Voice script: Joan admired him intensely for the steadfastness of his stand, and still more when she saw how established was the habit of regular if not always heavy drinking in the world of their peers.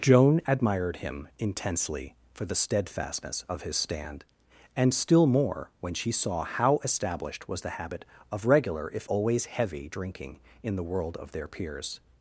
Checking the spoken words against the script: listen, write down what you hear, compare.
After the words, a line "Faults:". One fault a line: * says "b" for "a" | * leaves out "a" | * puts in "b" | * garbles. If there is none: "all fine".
Joan admired him intensely for the steadfastness of his stand, and still more when she saw how established was the habit of regular if always heavy drinking in the world of their peers.
Faults:
* leaves out "not"